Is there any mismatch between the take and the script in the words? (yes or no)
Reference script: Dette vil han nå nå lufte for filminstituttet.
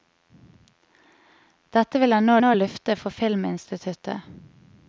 no